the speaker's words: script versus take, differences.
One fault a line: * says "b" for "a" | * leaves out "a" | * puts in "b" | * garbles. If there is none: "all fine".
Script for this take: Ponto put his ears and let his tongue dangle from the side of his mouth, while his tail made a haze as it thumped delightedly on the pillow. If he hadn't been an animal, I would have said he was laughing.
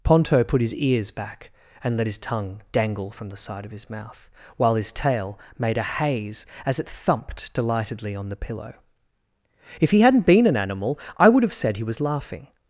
* puts in "back"